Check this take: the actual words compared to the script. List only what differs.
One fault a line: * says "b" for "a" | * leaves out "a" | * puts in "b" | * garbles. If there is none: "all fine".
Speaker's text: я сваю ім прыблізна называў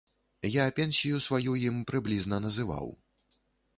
* puts in "пенсію"